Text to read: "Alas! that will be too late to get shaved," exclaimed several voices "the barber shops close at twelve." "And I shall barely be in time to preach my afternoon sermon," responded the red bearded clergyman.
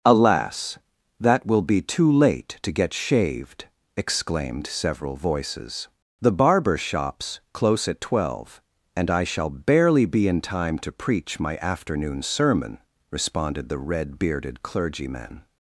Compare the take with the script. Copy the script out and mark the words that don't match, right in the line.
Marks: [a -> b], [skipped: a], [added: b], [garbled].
"Alas! that will be too late to get shaved," exclaimed several voices "the barber shops close at twelve." "And I shall barely be in time to preach my afternoon sermon," responded the red bearded clergyman.